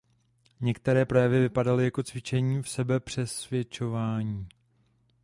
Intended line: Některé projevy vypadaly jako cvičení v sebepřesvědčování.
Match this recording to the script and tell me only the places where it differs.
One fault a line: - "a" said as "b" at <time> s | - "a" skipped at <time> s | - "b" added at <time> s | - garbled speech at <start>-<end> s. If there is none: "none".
none